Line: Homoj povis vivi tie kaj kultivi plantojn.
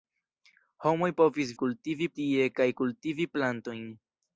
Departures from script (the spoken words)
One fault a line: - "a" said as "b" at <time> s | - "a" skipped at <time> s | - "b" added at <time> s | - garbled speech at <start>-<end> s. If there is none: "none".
- "vivi" said as "kultivi" at 1.6 s